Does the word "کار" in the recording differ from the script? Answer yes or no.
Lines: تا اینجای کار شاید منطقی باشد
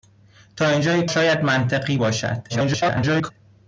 yes